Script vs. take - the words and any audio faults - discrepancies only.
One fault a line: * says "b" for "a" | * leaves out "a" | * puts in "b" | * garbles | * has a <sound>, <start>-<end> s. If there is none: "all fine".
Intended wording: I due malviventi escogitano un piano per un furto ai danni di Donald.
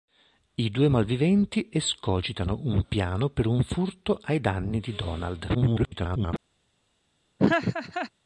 * garbles
* has a laugh, 7.4-8.1 s